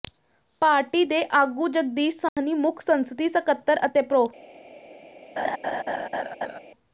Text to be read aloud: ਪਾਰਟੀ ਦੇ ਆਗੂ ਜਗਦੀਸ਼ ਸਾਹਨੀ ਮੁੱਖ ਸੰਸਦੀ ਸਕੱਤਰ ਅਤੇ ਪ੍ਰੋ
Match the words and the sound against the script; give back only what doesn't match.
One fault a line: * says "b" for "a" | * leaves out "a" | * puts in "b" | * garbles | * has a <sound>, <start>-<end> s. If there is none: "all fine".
* has a dropout, 2.3-2.4 s
* has a laugh, 5.4-6.6 s